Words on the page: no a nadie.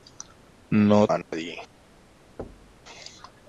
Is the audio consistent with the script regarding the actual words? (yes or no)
yes